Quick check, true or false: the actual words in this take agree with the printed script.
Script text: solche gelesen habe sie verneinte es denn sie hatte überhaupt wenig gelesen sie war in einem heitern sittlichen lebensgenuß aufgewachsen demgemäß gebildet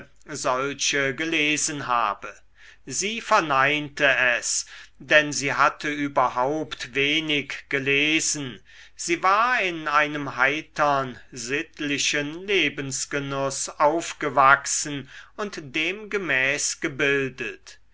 false